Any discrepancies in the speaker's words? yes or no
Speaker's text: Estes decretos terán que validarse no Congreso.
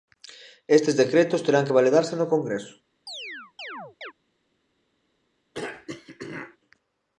no